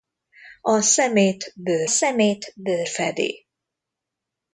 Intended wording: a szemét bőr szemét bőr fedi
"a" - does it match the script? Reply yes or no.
yes